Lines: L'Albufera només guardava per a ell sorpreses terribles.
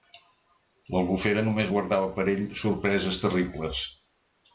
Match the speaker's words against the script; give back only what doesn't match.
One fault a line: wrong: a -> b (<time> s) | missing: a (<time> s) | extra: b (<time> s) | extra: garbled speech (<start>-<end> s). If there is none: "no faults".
no faults